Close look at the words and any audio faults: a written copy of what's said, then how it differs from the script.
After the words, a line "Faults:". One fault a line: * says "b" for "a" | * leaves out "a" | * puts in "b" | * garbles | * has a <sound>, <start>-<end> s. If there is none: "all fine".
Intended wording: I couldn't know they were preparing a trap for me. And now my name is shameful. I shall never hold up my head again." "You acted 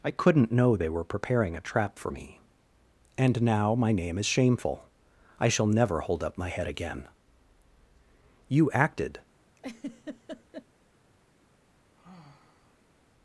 I couldn't know they were preparing a trap for me. And now my name is shameful. I shall never hold up my head again." "You acted
Faults:
* has a laugh, 9.6-10.7 s
* has a sigh, 11.9-13.1 s